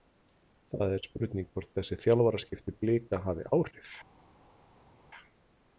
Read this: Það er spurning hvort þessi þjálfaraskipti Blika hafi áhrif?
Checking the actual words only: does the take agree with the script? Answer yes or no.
yes